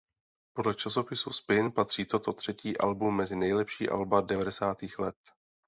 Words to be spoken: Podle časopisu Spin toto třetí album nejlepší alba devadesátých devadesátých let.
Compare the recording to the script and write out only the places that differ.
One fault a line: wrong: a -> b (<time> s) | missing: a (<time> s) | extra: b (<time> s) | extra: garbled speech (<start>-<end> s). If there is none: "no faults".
extra: patří (1.7 s)
extra: mezi (3.1 s)
missing: devadesátých (5.0 s)